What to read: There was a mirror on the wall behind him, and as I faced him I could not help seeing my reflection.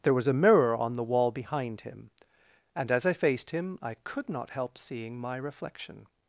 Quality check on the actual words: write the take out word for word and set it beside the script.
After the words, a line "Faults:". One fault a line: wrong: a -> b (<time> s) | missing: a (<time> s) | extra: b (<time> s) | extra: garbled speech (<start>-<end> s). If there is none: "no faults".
There was a mirror on the wall behind him, and as I faced him I could not help seeing my reflection.
Faults:
no faults